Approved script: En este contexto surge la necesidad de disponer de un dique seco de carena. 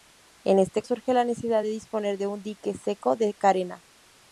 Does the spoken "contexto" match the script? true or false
false